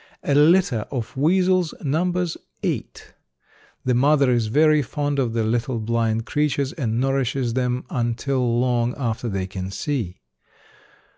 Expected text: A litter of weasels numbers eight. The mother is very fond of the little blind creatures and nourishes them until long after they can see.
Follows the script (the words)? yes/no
yes